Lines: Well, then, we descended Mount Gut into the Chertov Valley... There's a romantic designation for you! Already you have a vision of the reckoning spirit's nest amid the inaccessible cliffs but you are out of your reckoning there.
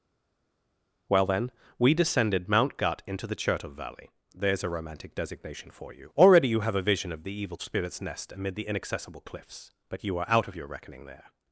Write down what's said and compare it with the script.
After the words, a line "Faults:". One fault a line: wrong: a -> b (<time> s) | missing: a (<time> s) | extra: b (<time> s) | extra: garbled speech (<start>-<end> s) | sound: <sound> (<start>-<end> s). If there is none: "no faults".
Well, then, we descended Mount Gut into the Chertov Valley... There's a romantic designation for you! Already you have a vision of the evil spirit's nest amid the inaccessible cliffs but you are out of your reckoning there.
Faults:
wrong: reckoning -> evil (7.3 s)